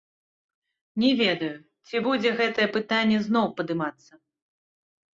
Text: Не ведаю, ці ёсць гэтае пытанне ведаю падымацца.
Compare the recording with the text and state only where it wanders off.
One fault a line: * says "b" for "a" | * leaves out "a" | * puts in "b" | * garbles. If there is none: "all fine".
* says "будзе" for "ёсць"
* says "зноў" for "ведаю"